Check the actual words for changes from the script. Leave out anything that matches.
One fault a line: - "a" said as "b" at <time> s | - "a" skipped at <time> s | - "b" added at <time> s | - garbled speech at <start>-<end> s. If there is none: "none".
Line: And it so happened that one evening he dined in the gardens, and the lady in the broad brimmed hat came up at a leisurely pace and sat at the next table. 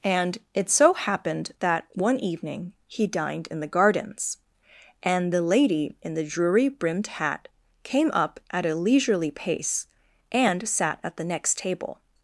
- "broad" said as "drury" at 6.2 s